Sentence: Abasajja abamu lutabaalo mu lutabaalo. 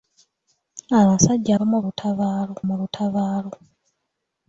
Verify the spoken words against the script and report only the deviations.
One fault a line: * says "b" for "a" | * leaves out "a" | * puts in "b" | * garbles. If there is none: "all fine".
all fine